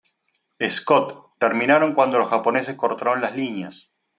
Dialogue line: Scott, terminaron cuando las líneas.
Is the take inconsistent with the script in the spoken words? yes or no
yes